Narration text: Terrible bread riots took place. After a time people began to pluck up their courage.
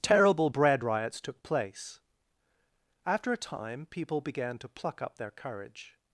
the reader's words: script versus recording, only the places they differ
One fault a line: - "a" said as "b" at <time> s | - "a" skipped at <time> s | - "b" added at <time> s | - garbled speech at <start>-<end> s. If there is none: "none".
none